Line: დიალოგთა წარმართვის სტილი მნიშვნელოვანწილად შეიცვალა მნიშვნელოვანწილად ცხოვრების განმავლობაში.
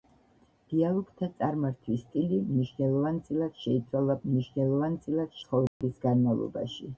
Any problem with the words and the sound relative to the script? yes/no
yes